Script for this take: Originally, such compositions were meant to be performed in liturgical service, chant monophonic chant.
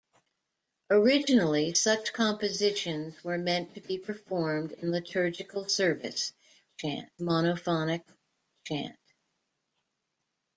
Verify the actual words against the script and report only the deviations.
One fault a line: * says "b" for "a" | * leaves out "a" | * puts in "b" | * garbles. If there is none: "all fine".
all fine